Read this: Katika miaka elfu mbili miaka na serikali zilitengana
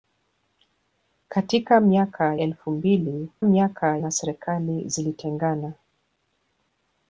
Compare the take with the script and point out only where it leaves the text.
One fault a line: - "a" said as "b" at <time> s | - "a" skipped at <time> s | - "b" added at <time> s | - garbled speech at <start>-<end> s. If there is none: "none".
none